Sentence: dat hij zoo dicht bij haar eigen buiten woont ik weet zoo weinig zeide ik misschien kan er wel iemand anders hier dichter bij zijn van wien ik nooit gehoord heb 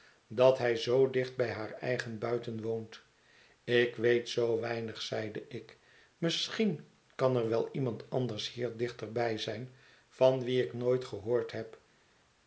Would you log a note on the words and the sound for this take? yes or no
no